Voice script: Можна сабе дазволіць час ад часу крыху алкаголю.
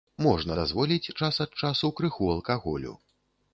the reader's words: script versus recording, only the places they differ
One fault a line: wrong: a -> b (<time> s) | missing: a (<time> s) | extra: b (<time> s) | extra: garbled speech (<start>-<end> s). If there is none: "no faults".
missing: сабе (0.6 s)